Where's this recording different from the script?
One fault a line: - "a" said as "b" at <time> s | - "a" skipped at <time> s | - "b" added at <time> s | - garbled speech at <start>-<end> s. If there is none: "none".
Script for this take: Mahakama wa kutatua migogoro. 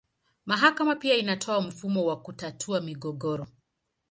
- "pia inatoa mfumo" added at 0.9 s